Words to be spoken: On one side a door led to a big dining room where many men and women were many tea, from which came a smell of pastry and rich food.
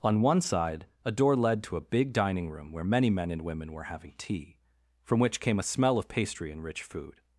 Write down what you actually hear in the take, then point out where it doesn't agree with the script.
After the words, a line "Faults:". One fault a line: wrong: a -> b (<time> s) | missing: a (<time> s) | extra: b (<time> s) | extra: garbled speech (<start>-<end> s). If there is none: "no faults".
On one side a door led to a big dining room where many men and women were having tea, from which came a smell of pastry and rich food.
Faults:
wrong: many -> having (3.8 s)